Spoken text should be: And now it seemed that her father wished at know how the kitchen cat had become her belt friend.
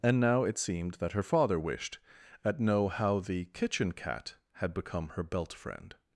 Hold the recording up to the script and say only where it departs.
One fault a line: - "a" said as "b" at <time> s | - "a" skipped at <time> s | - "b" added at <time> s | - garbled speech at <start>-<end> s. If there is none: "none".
none